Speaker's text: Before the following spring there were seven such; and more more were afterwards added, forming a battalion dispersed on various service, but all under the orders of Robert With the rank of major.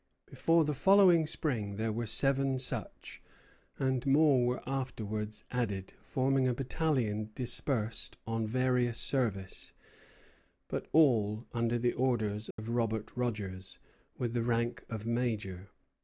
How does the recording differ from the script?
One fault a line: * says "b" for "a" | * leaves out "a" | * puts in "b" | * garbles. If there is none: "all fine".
* leaves out "more"
* puts in "Rogers"